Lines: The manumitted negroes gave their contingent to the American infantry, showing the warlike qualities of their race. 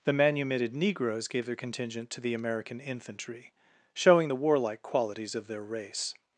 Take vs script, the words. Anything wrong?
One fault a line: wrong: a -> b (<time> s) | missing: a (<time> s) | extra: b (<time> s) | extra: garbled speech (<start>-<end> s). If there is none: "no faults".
no faults